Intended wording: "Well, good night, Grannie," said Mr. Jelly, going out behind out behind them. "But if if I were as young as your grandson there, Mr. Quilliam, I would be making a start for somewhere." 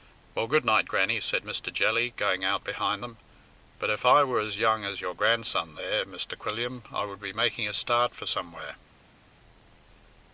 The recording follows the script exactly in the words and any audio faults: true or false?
false